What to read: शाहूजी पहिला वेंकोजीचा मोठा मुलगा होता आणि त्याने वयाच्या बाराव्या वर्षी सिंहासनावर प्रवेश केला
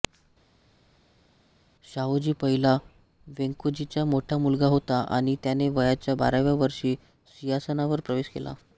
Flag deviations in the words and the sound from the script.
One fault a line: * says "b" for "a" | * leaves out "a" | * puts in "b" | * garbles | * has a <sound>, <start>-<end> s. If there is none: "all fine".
all fine